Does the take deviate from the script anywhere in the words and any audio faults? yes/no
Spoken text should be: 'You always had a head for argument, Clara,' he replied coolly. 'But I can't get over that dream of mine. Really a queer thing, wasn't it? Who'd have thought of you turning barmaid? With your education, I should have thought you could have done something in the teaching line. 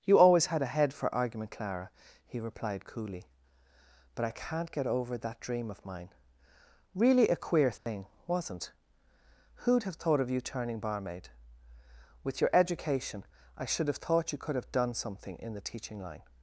yes